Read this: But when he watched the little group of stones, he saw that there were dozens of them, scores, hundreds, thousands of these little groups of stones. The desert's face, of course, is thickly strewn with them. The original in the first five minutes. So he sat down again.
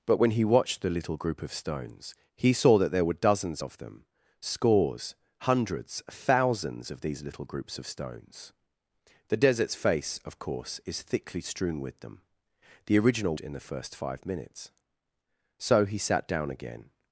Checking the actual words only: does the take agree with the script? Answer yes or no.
yes